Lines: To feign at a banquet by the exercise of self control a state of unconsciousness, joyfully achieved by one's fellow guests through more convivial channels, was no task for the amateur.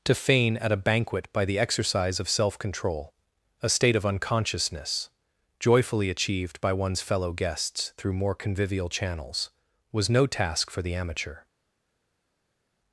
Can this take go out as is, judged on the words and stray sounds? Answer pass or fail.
pass